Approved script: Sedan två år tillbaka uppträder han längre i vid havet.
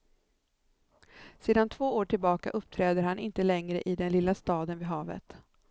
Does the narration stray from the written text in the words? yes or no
yes